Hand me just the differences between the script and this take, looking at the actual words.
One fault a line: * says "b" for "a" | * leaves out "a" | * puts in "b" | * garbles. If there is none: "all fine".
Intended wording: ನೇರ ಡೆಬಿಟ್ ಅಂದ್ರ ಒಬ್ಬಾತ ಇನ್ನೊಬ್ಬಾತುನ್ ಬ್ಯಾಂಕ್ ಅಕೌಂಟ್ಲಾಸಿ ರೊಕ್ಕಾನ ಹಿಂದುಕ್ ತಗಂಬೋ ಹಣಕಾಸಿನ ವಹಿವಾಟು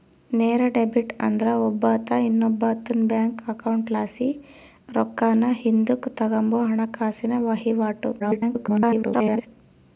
* garbles